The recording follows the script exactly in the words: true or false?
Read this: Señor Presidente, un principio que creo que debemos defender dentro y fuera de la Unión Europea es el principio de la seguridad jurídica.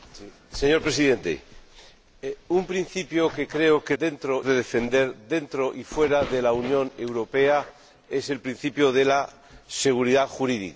false